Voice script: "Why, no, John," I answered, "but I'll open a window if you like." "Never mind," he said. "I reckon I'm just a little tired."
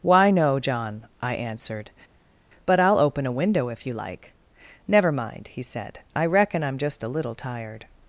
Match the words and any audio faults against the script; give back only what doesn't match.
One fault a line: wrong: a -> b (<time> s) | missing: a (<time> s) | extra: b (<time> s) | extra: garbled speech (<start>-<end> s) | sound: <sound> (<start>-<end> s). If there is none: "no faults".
no faults